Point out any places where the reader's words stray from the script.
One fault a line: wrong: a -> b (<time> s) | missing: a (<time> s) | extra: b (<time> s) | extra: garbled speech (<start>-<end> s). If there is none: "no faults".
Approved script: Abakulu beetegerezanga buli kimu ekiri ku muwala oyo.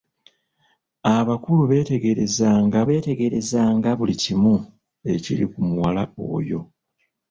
extra: beetegerezanga (2.9 s)